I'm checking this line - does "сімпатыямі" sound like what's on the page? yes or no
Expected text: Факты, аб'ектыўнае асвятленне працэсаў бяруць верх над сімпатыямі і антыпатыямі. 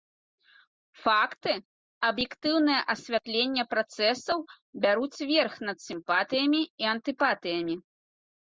yes